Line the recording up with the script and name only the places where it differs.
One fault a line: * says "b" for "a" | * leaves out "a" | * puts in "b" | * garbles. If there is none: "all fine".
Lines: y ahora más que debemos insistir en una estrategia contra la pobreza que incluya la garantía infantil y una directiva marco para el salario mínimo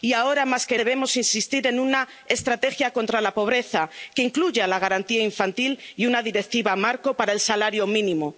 all fine